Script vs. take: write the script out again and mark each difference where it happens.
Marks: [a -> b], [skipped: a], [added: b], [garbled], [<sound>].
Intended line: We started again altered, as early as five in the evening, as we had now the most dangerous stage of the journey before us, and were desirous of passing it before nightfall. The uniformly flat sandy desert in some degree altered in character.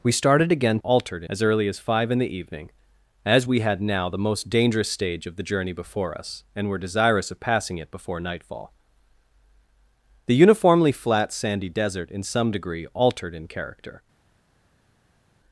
We started again altered, as early as five in the evening, as we had now the most dangerous stage of the journey before us, and were desirous of passing it before nightfall. The uniformly flat sandy desert in some degree altered in character.